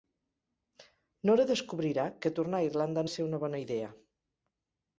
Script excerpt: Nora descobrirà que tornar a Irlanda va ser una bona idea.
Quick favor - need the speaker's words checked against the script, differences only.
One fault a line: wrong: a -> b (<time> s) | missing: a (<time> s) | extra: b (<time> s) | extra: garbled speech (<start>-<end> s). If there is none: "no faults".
no faults